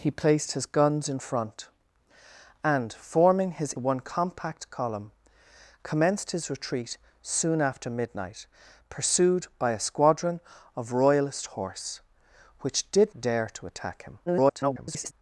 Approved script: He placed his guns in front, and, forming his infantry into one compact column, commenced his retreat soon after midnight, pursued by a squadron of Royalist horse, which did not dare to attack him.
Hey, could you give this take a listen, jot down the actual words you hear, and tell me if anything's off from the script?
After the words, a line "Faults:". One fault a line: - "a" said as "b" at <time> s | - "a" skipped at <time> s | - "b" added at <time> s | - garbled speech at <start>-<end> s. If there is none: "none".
He placed his guns in front, and, forming his one compact column, commenced his retreat soon after midnight, pursued by a squadron of Royalist horse, which did dare to attack him. [garbled]
Faults:
- "infantry into" skipped at 3.8 s
- "not" skipped at 13.1 s
- garbled speech at 14.3-15.1 s